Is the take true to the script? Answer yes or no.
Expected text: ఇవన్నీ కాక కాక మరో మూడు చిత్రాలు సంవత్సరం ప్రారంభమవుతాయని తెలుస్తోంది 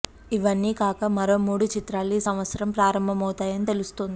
no